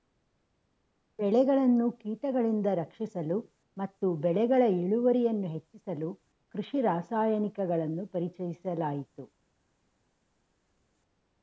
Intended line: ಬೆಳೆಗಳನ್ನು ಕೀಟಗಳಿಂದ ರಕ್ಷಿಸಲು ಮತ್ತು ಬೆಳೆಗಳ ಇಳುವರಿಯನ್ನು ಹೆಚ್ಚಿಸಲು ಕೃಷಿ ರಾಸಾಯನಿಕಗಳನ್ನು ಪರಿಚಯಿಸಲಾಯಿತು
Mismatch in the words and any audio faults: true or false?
false